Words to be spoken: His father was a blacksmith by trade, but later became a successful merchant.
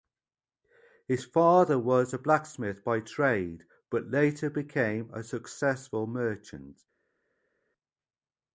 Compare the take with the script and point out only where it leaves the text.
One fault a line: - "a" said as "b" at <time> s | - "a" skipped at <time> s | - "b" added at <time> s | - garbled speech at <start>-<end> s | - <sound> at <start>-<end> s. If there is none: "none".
none